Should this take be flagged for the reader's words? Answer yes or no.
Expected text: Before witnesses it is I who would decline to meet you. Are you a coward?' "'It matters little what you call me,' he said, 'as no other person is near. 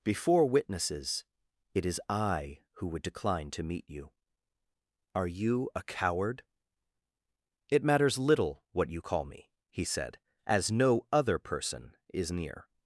no